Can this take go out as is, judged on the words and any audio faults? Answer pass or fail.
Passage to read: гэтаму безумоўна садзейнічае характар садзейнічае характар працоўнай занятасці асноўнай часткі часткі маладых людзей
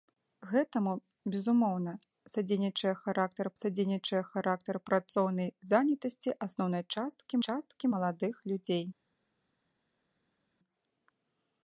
pass